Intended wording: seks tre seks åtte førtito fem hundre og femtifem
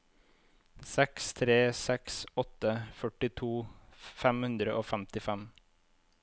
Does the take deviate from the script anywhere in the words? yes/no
no